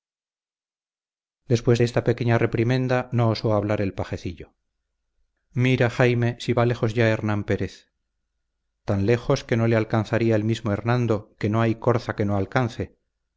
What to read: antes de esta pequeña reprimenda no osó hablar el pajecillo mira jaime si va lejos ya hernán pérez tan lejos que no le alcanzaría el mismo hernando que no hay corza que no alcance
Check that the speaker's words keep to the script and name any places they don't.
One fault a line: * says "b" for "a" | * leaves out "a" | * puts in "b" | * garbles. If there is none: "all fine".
* says "después" for "antes"